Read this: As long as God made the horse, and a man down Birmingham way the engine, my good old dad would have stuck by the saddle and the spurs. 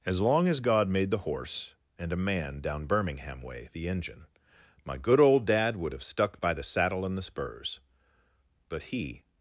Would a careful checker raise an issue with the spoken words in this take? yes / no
yes